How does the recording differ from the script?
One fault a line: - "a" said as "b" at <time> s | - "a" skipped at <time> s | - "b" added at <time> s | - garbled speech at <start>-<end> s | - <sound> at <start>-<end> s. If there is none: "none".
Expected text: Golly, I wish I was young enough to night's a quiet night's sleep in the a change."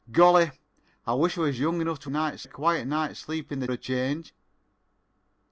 none